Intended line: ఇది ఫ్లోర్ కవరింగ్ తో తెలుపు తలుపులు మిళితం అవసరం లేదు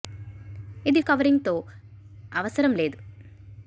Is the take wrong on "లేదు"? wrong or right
right